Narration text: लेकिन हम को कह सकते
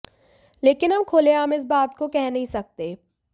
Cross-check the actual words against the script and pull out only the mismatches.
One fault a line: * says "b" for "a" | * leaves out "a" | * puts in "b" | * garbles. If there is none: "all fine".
* puts in "खुलेआम इस बात"
* puts in "नहीं"